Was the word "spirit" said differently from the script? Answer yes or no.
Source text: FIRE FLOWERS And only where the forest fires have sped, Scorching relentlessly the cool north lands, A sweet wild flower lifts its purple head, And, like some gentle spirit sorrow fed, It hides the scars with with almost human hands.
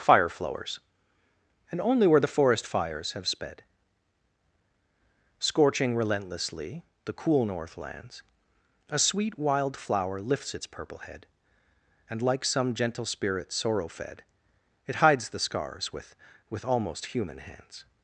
no